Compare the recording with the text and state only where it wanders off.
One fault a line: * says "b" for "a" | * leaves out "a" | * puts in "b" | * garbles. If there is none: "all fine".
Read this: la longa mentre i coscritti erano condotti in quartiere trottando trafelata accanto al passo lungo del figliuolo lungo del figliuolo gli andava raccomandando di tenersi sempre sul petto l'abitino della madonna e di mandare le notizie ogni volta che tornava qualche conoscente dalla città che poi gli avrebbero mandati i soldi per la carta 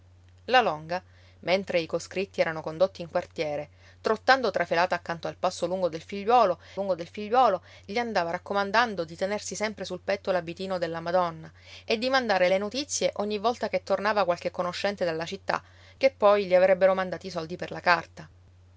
all fine